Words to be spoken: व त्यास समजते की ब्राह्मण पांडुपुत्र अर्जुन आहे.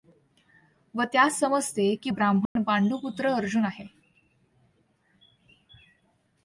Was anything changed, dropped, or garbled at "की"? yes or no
no